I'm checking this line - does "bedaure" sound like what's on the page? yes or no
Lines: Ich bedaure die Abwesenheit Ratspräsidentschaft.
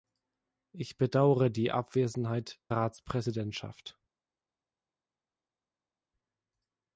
yes